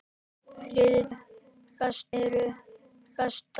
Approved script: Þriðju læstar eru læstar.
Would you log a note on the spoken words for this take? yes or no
no